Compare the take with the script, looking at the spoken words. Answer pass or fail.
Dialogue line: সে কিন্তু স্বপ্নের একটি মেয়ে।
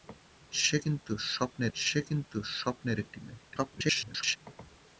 fail